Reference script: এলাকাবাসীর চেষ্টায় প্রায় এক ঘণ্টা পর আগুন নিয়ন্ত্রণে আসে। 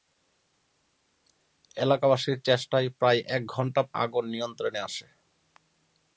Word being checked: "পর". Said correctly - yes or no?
no